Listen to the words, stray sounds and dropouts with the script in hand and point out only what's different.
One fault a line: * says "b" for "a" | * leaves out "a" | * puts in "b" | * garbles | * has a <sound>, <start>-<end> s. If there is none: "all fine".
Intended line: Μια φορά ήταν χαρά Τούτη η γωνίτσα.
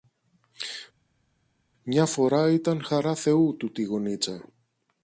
* puts in "Θεού"